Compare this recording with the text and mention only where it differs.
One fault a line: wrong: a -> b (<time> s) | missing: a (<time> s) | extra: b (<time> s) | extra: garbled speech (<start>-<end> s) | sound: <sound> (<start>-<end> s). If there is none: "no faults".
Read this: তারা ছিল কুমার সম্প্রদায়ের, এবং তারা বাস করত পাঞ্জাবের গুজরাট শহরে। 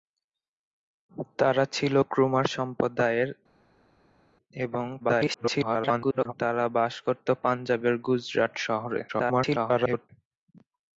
extra: garbled speech (5.0-6.3 s)
extra: garbled speech (9.1-10.1 s)